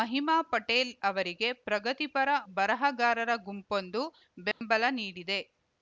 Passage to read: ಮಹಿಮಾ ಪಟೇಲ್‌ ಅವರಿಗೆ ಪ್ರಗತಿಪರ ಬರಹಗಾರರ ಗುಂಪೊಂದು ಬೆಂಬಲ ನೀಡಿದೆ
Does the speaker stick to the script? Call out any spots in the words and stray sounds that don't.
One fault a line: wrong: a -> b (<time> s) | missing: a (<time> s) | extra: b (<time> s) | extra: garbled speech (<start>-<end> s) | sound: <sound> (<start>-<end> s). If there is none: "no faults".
sound: dropout (4.5-4.6 s)